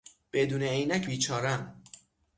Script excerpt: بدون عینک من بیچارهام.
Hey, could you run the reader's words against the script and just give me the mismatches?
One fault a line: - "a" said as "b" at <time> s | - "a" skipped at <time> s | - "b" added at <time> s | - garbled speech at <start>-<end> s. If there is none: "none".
- "من" skipped at 1.1 s